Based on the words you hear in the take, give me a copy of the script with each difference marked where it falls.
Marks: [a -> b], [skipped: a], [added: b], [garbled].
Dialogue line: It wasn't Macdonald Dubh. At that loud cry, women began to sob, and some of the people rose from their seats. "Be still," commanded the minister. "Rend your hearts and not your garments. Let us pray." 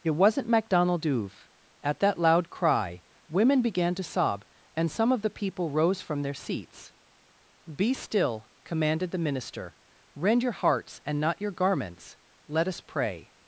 It wasn't Macdonald Dubh. At that loud cry, women began to sob, and some of the people rose from their seats. "Be still," commanded the minister. "Rend your hearts and not your garments. Let us pray."